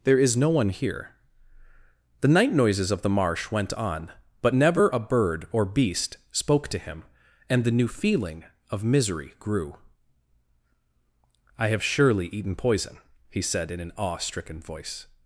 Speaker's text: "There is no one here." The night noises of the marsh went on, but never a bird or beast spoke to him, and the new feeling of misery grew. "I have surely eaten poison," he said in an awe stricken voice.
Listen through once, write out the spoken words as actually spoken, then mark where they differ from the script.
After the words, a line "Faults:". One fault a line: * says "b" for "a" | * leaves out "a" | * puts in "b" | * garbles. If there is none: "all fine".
"There is no one here." The night noises of the marsh went on, but never a bird or beast spoke to him, and the new feeling of misery grew. "I have surely eaten poison," he said in an awe stricken voice.
Faults:
all fine